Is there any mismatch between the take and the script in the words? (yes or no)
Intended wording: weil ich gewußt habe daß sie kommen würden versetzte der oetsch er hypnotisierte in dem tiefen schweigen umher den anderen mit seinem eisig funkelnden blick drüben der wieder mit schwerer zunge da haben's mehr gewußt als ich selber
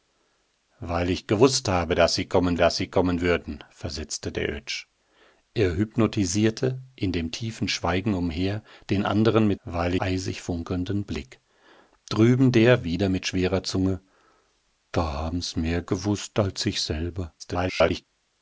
yes